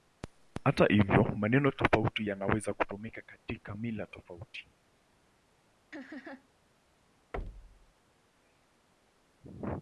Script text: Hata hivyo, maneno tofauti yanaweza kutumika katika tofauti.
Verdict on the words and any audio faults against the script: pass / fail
fail